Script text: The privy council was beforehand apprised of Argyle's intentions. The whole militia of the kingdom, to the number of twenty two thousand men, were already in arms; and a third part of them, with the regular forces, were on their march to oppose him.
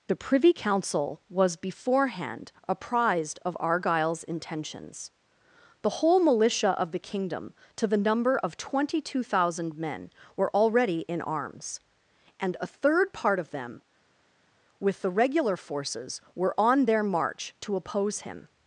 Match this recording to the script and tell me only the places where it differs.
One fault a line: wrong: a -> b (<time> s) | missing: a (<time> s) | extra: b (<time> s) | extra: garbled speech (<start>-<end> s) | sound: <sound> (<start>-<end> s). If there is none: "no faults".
no faults